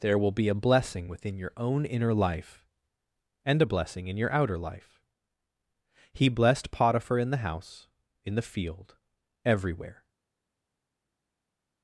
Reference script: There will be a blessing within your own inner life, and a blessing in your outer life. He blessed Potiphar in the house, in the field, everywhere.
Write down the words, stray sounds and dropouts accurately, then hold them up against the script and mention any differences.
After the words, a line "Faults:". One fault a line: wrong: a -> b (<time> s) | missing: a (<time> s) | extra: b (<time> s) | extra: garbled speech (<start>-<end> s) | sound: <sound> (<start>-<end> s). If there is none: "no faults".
There will be a blessing within your own inner life, and a blessing in your outer life. He blessed Potiphar in the house, in the field, everywhere.
Faults:
no faults